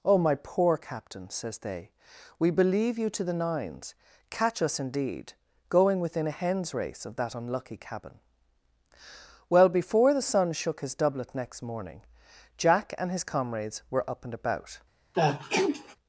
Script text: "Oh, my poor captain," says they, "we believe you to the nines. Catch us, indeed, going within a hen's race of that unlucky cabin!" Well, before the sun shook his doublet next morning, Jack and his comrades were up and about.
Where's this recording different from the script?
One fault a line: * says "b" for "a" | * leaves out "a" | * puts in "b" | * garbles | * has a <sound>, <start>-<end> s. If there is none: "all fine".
* has a sneeze, 15.1-16.0 s